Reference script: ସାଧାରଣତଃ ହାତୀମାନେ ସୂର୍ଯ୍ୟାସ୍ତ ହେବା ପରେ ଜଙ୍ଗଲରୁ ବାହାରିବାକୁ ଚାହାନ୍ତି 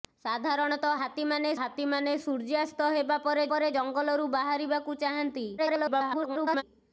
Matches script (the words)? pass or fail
fail